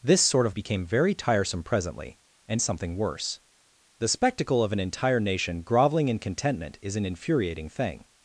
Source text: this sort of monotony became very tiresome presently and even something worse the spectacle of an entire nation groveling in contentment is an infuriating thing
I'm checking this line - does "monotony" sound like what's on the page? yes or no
no